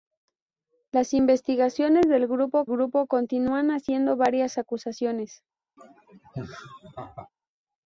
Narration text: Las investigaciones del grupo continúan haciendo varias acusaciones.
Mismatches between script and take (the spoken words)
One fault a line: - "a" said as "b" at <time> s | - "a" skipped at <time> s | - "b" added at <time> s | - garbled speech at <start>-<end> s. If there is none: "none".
- "grupo" added at 2.7 s